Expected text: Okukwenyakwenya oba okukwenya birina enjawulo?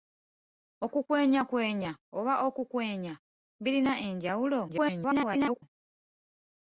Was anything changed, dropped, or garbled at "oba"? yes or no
no